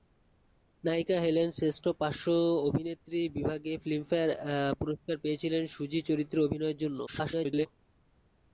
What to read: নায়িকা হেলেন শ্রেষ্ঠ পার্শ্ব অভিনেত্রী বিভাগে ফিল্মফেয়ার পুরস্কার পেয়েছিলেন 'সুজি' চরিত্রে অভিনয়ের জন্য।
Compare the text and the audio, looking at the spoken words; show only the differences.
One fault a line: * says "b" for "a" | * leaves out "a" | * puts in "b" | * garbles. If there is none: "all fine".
* garbles